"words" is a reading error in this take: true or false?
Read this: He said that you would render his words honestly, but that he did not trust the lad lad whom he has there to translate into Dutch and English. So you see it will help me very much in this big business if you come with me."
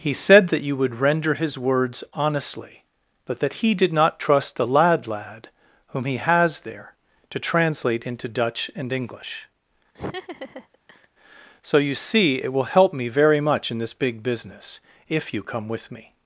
false